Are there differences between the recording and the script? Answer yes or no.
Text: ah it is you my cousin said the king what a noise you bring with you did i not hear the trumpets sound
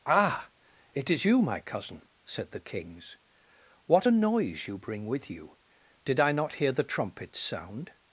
yes